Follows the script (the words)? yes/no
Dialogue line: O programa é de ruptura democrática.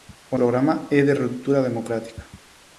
yes